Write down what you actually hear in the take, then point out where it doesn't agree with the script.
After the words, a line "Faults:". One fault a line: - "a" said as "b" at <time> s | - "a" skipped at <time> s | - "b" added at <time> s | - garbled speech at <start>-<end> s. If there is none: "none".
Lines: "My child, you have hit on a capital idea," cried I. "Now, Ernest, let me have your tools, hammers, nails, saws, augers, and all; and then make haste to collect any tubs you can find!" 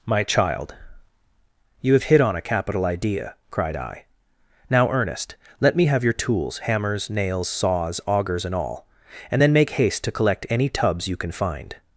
"My child, you have hit on a capital idea," cried I. "Now, Ernest, let me have your tools, hammers, nails, saws, augers, and all; and then make haste to collect any tubs you can find!"
Faults:
none